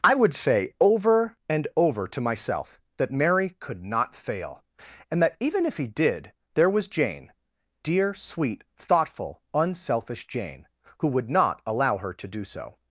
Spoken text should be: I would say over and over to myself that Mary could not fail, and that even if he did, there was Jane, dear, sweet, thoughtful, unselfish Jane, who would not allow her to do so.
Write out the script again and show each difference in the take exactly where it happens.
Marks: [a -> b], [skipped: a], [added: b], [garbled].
I would say over and over to myself that Mary could not fail, and that even if he did, there was Jane, dear, sweet, thoughtful, unselfish Jane, who would not allow her to do so.